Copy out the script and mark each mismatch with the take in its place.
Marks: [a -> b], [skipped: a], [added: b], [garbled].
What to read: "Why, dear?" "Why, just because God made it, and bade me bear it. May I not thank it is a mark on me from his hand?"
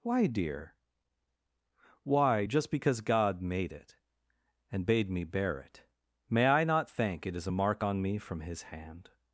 "Why, dear?" "Why, just because God made it, and bade me bear it. May I not thank it is a mark on me from his hand?"